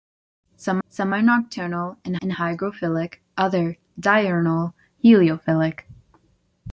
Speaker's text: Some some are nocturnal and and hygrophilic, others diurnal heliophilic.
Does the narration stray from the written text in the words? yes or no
no